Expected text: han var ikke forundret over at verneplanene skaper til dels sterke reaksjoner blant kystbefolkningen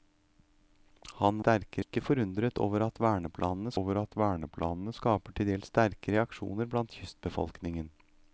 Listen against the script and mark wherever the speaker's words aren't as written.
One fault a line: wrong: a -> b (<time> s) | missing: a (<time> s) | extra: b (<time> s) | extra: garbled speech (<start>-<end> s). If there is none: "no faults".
wrong: var -> sterke (1.4 s)
extra: over at verneplanene (3.8 s)